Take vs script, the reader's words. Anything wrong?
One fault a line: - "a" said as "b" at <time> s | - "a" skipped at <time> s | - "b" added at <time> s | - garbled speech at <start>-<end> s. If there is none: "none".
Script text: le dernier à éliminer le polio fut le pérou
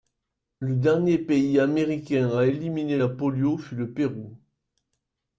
- "pays américain" added at 1.2 s
- "le" said as "la" at 3.0 s